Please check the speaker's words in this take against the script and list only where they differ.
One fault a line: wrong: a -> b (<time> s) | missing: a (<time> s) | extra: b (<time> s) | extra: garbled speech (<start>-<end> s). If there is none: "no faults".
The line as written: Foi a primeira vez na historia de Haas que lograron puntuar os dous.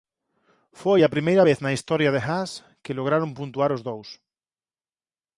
no faults